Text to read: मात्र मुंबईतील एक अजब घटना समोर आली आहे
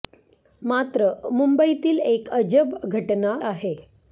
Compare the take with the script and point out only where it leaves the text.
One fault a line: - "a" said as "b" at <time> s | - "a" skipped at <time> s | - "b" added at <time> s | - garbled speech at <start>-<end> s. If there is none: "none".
- "समोर आली" skipped at 3.4 s